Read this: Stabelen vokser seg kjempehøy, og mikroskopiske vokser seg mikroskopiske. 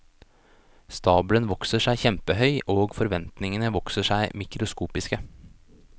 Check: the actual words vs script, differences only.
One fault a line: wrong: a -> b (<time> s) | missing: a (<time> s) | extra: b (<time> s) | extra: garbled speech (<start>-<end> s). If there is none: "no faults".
wrong: mikroskopiske -> forventningene (3.0 s)